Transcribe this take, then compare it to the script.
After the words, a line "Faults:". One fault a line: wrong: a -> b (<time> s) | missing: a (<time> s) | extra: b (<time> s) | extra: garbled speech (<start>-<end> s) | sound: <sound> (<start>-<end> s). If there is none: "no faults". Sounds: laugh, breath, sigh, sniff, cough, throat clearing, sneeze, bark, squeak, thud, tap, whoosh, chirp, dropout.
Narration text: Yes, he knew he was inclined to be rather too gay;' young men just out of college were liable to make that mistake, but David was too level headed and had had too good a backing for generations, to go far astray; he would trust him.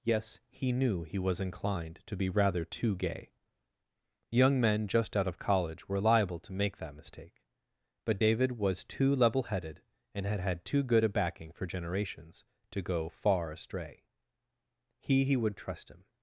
Yes, he knew he was inclined to be rather too gay;' young men just out of college were liable to make that mistake, but David was too level headed and had had too good a backing for generations, to go far astray; he he would trust him.
Faults:
extra: he (15.2 s)